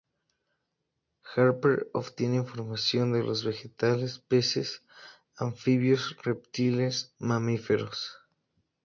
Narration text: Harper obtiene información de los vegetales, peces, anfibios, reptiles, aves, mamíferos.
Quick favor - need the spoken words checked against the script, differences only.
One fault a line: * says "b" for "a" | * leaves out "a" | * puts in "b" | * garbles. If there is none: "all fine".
* leaves out "aves"